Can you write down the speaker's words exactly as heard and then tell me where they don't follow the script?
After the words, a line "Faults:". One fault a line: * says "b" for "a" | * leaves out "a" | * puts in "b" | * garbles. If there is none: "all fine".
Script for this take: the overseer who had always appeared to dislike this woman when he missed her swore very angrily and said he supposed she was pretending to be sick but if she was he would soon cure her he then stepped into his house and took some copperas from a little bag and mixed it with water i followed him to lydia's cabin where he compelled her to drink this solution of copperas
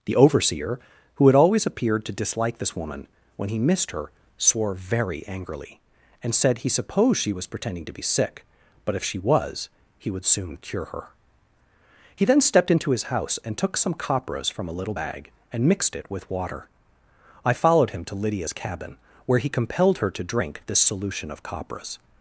the overseer who had always appeared to dislike this woman when he missed her swore very angrily and said he supposed she was pretending to be sick but if she was he would soon cure her he then stepped into his house and took some copperas from a little bag and mixed it with water i followed him to lydia's cabin where he compelled her to drink this solution of copperas
Faults:
all fine